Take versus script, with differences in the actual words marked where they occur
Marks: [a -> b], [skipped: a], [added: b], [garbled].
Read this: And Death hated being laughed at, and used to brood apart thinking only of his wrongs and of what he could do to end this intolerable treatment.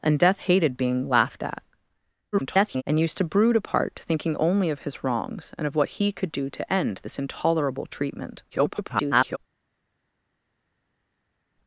And Death hated being laughed at, [garbled] and used to brood apart thinking only of his wrongs and of what he could do to end this intolerable treatment. [garbled]